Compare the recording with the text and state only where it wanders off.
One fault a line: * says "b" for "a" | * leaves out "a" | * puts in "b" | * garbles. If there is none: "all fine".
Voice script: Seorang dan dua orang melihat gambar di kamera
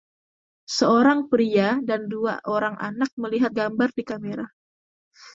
* puts in "pria"
* puts in "anak"